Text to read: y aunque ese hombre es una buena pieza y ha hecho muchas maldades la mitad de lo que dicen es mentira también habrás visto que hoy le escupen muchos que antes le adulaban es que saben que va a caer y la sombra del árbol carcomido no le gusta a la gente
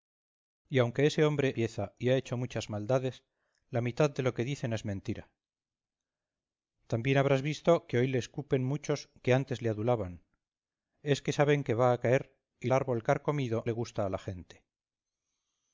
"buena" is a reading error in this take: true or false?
true